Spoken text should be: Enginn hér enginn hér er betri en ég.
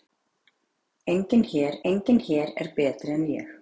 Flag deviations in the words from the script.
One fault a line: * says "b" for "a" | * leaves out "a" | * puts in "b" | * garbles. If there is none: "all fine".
all fine